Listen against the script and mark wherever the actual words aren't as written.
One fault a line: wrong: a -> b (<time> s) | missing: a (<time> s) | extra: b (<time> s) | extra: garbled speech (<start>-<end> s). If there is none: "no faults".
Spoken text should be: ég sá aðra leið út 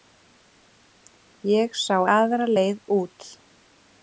no faults